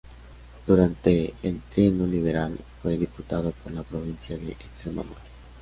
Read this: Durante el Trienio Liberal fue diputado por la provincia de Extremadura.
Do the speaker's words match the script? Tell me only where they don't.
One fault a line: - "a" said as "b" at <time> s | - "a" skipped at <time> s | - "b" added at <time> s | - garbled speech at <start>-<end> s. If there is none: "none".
none